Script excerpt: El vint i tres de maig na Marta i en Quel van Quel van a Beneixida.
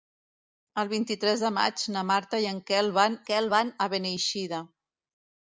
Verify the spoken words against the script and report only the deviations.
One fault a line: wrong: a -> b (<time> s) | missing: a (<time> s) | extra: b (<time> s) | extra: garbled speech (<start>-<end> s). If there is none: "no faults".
no faults